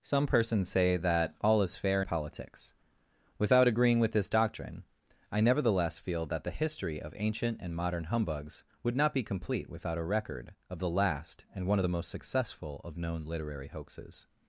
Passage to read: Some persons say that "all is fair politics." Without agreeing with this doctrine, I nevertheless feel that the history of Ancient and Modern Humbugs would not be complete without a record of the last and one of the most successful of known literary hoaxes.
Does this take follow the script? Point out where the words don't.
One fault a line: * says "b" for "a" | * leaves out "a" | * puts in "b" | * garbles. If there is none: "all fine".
all fine